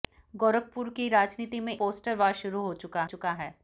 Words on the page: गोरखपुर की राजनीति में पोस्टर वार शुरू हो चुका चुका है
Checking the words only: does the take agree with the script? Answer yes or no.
yes